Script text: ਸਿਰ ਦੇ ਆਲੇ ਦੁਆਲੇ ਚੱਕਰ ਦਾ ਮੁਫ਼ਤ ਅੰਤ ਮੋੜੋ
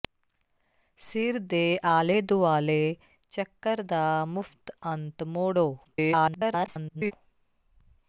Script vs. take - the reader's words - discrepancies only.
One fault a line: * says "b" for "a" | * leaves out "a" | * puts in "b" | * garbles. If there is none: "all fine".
* garbles